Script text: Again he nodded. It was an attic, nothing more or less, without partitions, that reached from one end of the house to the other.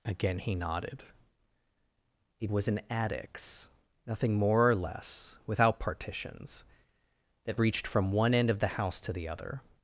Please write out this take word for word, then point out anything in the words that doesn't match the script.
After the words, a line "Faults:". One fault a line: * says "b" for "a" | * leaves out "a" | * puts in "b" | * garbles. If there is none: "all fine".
Again he nodded. It was an attics, nothing more or less, without partitions, that reached from one end of the house to the other.
Faults:
* says "attics" for "attic"